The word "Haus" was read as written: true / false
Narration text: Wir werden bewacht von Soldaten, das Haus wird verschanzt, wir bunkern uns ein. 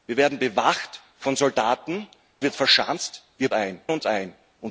false